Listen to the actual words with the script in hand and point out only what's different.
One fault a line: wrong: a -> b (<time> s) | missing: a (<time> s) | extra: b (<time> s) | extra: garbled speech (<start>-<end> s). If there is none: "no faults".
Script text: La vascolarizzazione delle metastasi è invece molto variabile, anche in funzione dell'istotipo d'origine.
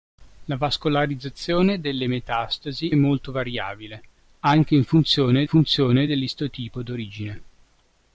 missing: è invece (2.9 s)
extra: funzione (5.5 s)